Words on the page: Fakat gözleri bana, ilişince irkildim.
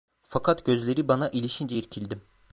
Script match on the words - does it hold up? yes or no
yes